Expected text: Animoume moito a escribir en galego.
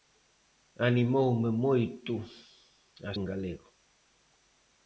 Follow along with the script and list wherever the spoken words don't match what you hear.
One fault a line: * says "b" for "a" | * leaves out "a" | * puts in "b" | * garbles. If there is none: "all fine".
* leaves out "escribir"